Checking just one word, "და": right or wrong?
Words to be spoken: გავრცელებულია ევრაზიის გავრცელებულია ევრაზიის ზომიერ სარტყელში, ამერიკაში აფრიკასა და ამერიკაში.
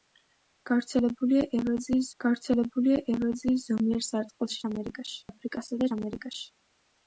right